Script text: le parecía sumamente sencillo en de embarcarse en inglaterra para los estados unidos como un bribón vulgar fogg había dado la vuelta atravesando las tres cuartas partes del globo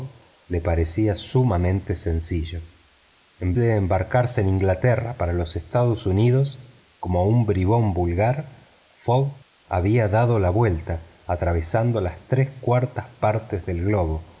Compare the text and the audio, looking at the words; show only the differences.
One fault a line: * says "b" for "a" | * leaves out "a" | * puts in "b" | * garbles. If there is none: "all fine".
all fine